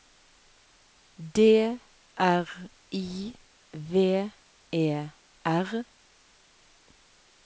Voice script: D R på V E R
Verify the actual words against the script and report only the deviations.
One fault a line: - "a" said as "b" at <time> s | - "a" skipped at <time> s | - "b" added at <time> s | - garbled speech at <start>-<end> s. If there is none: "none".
- "på" said as "I" at 2.9 s